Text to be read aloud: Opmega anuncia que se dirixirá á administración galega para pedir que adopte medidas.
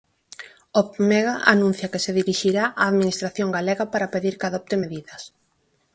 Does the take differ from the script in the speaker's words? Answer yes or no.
no